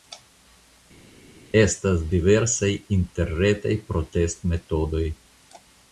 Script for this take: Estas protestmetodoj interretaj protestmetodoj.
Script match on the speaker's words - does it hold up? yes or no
no